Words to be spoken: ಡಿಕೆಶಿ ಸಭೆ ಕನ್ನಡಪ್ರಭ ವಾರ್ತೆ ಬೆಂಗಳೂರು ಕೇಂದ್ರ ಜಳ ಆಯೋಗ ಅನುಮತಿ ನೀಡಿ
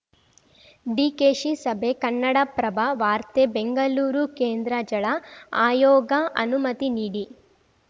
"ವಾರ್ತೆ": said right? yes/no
yes